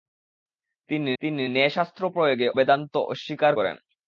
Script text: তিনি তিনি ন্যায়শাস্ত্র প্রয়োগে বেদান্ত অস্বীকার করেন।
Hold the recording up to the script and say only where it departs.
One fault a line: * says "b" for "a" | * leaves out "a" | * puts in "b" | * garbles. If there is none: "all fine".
all fine